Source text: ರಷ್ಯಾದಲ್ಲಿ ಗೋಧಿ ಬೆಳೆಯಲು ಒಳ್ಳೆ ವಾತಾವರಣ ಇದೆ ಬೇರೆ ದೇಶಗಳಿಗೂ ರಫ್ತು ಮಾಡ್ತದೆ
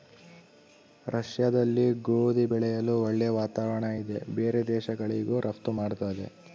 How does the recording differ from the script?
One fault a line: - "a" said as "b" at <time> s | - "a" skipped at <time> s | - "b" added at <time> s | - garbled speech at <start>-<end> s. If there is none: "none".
none